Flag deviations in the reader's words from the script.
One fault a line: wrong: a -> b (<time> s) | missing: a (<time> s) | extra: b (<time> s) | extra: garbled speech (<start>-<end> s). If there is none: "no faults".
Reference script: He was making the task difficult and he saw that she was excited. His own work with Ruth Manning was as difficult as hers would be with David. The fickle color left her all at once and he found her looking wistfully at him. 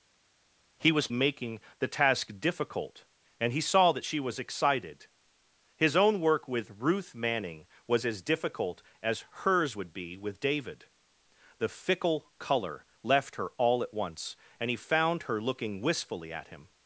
no faults